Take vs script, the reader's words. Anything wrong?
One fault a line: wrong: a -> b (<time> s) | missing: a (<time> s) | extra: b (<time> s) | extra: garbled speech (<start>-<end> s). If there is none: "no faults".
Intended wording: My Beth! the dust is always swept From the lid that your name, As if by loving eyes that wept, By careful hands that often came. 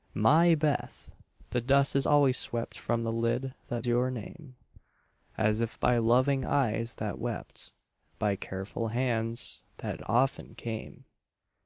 no faults